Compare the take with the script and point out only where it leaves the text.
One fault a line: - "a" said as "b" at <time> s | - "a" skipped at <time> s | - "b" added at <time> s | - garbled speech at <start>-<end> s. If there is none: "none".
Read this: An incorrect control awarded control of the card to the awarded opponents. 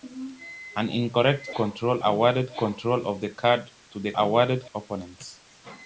none